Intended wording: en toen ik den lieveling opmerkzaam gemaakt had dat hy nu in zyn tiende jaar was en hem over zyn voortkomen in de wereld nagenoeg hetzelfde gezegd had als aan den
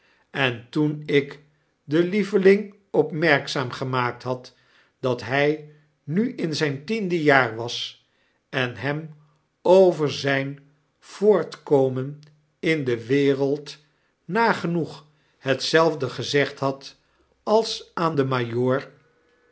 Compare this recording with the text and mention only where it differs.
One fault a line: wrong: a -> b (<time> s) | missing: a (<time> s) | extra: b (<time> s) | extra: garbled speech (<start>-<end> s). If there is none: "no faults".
no faults